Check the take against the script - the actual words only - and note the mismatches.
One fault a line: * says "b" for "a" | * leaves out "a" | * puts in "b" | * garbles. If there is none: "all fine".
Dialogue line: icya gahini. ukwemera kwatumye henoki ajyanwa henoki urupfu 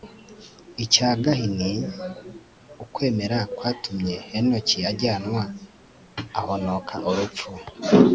* says "ahonoka" for "henoki"